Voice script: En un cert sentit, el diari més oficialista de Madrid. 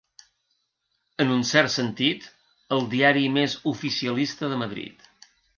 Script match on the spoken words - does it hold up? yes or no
yes